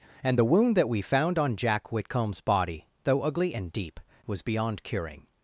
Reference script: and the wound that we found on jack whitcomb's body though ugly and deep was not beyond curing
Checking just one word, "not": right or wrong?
wrong